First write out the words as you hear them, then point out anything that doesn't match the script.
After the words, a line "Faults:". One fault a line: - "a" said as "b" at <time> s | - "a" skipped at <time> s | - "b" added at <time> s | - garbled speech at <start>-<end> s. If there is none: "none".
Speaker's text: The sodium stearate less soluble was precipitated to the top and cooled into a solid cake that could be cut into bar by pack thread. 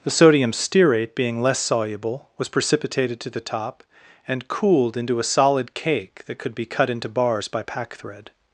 The sodium stearate being less soluble was precipitated to the top and cooled into a solid cake that could be cut into bars by pack thread.
Faults:
- "being" added at 1.1 s
- "bar" said as "bars" at 7.1 s